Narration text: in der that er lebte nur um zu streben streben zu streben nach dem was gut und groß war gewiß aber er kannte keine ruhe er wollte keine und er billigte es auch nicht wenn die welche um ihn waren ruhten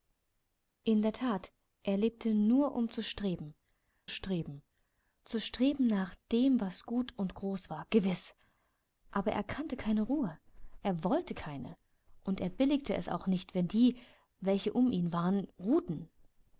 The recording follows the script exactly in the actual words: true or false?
true